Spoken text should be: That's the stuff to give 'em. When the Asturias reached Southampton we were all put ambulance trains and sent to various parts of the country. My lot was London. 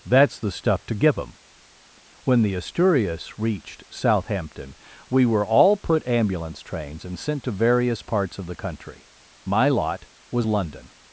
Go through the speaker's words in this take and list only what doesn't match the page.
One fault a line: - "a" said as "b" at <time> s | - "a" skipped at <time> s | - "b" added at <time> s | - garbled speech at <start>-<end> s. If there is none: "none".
none